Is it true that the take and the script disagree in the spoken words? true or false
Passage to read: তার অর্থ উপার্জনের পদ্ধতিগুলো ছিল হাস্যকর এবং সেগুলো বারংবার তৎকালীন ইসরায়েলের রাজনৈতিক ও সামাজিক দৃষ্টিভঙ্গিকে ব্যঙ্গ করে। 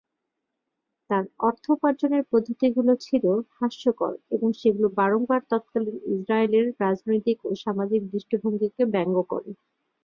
false